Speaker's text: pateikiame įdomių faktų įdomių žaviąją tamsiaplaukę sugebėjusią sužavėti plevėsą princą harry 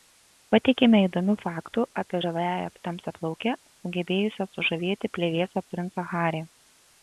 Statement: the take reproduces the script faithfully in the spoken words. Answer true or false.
false